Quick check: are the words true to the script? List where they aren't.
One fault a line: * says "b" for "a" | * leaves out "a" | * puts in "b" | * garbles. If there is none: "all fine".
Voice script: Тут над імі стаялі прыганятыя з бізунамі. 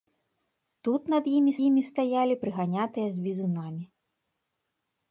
* puts in "імі"